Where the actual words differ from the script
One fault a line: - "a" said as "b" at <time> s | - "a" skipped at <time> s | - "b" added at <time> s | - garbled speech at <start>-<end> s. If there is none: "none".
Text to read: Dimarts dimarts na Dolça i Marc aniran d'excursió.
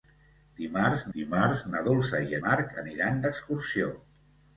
none